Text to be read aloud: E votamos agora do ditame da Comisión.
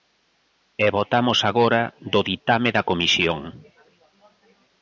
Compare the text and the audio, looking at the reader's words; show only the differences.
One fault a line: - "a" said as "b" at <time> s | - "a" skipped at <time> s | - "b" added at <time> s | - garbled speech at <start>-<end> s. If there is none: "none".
none